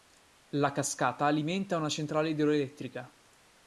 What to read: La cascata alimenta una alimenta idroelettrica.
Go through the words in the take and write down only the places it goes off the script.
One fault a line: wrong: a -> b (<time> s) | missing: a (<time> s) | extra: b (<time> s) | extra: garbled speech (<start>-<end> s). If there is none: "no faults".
wrong: alimenta -> centrale (1.9 s)